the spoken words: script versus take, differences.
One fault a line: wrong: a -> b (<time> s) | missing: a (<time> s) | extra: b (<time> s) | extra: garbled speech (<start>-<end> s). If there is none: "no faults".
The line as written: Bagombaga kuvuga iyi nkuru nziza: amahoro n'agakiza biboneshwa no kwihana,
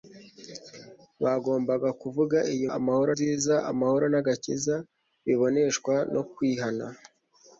wrong: nkuru -> amahoro (2.8 s)